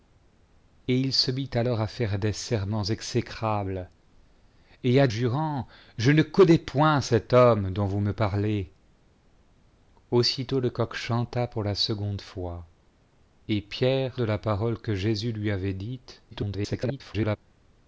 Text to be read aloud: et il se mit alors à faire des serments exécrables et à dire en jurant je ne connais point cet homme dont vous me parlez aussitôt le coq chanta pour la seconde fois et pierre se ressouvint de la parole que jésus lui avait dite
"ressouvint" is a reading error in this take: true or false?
true